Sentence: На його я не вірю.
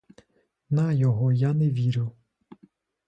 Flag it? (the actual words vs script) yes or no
no